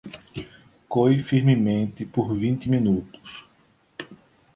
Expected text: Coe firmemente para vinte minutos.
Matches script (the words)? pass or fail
fail